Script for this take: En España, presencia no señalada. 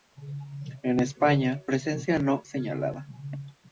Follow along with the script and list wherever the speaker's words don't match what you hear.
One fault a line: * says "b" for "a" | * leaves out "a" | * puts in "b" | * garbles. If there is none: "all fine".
all fine